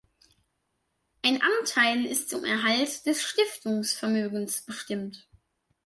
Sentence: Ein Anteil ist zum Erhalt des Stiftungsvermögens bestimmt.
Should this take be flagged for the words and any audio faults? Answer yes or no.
no